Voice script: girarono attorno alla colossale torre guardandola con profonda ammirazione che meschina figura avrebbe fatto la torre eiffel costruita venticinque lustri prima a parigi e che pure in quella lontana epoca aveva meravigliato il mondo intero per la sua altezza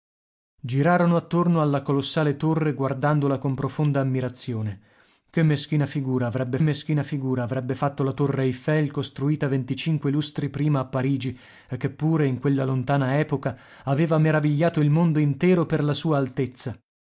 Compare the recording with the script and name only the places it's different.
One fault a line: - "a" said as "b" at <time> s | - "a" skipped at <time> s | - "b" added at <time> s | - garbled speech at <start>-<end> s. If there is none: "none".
- "meschina figura avrebbe" added at 6.6 s